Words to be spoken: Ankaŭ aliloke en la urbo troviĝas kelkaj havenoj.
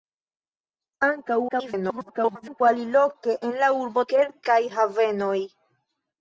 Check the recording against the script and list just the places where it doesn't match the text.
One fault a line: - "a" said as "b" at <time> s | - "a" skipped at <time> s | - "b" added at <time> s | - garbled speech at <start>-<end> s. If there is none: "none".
- garbled speech at 1.5-2.6 s
- "troviĝas" skipped at 4.0 s